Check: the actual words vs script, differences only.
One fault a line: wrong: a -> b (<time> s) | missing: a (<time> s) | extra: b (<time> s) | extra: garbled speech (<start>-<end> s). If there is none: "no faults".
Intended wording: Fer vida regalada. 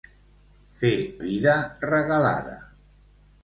no faults